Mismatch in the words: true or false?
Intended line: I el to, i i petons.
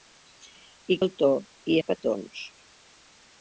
false